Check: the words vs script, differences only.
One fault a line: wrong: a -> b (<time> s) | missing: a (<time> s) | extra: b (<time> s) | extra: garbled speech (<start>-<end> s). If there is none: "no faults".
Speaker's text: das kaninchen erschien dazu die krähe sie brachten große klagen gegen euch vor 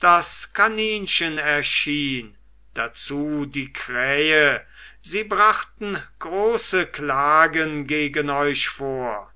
no faults